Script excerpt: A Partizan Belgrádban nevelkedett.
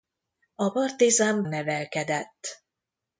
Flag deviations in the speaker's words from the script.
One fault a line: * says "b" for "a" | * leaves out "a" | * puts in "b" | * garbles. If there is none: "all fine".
* leaves out "Belgrádban"